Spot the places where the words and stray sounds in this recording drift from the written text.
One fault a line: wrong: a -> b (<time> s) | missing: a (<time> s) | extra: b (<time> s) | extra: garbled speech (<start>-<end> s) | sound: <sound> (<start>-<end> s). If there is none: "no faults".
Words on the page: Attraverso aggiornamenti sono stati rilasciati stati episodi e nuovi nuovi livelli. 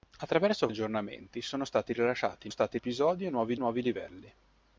no faults